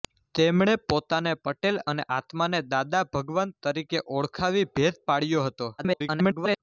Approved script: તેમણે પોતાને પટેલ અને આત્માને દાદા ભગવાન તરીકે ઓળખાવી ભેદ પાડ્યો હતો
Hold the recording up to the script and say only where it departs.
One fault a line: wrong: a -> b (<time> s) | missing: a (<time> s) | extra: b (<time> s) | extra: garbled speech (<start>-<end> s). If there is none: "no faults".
extra: garbled speech (5.8-6.6 s)